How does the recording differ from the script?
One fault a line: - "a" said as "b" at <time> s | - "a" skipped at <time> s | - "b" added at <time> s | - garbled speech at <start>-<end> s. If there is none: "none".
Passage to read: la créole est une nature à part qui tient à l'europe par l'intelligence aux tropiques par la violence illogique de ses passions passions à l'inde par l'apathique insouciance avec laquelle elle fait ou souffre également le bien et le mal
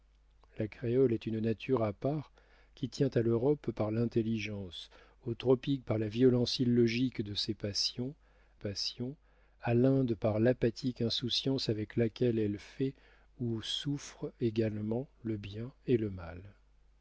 none